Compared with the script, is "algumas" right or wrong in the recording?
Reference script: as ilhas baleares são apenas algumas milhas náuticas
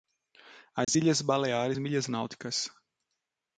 wrong